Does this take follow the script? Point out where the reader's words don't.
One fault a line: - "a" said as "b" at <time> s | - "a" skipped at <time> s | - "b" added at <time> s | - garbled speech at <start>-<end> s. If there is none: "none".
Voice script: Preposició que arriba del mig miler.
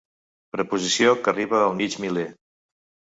- "del" said as "al" at 1.6 s